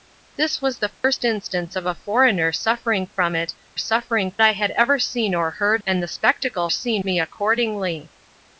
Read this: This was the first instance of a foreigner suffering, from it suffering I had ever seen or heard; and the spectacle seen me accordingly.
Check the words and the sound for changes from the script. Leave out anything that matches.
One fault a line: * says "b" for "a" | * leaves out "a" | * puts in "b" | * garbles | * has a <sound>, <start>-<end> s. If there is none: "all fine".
* has a dropout, 0.9-1.0 s